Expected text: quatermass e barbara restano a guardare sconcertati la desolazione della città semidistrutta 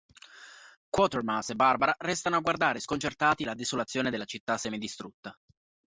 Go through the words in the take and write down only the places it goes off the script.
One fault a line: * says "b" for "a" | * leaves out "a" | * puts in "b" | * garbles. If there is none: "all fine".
all fine